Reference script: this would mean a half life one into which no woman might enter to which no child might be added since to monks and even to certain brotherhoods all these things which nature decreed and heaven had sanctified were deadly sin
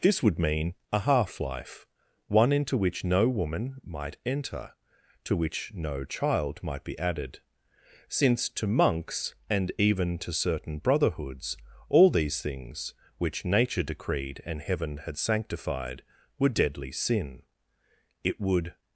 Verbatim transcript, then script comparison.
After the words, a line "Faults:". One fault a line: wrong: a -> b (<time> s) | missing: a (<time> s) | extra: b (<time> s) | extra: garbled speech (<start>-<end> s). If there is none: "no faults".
this would mean a half life one into which no woman might enter to which no child might be added since to monks and even to certain brotherhoods all these things which nature decreed and heaven had sanctified were deadly sin it would
Faults:
extra: it would (18.2 s)